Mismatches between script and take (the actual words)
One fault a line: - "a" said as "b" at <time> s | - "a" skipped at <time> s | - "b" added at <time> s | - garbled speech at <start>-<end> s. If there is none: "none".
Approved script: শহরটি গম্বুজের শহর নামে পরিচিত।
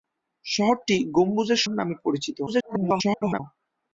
- "শহর" skipped at 1.6 s
- garbled speech at 2.5-3.4 s